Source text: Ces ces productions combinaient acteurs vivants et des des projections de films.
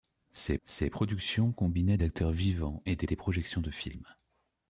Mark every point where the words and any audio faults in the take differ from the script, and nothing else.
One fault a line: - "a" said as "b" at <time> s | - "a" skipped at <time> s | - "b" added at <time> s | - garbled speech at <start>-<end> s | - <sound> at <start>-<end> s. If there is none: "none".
none